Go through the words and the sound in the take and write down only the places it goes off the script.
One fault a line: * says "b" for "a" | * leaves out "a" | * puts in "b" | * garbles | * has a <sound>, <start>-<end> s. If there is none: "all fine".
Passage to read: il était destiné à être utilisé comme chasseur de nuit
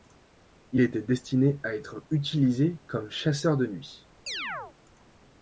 * has a chirp, 4.3-4.8 s